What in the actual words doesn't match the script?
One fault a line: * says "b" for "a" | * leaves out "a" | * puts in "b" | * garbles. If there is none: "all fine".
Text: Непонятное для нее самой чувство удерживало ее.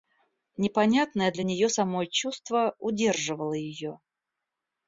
all fine